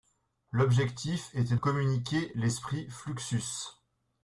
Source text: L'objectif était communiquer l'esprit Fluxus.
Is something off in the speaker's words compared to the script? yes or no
no